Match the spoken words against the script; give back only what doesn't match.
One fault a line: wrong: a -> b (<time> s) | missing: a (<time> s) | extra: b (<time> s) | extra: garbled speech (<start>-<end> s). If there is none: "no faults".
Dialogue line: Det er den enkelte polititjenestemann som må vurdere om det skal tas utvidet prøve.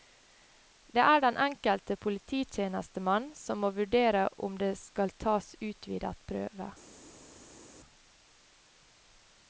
no faults